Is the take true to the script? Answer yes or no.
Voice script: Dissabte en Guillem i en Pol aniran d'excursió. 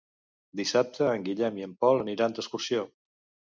yes